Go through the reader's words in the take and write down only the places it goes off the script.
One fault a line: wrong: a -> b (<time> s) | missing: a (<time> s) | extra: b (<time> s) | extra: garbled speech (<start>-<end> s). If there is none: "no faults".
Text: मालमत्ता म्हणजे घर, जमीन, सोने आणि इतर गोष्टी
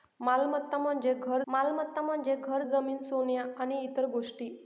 extra: मालमत्ता म्हणजे घर (1.5 s)